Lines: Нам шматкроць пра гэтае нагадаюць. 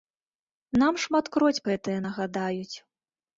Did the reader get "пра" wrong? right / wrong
wrong